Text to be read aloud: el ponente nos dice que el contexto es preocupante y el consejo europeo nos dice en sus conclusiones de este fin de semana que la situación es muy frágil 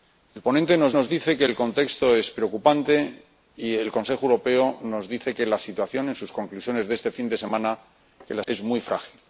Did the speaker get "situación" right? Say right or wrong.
wrong